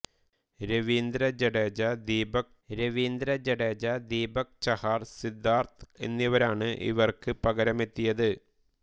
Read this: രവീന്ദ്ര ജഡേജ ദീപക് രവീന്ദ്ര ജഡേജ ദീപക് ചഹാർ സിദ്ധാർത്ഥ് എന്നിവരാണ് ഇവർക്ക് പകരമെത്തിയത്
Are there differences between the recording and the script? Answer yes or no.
no